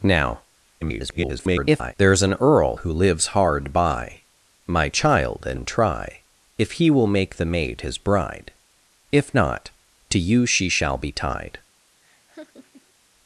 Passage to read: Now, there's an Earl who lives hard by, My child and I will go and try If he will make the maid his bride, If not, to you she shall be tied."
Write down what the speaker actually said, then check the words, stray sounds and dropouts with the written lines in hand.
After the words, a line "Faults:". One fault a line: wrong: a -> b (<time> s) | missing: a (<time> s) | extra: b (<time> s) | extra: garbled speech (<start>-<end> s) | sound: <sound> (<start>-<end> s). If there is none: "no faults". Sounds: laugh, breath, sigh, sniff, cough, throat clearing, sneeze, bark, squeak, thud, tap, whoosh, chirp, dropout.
Now, [garbled] there's an Earl who lives hard by, My child and and try If he will make the maid his bride, If not, to you she shall be tied."
Faults:
extra: garbled speech (0.8-1.9 s)
missing: I will go (5.6 s)
sound: laugh (12.0-12.9 s)